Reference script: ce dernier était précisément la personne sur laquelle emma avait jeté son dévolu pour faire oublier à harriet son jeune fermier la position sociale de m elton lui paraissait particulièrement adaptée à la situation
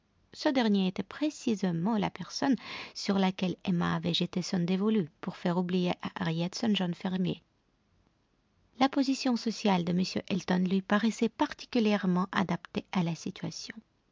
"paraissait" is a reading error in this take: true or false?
false